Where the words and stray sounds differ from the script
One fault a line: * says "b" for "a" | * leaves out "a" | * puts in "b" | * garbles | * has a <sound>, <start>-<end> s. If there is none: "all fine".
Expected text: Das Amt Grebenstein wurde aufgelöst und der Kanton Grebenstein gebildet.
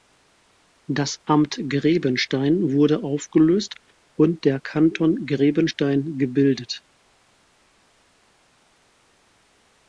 all fine